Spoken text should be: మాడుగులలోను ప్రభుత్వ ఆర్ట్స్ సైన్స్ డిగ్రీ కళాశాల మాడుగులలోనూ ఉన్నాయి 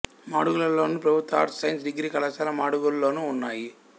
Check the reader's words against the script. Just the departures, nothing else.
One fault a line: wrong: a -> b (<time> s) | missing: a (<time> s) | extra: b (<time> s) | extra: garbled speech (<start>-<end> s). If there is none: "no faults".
no faults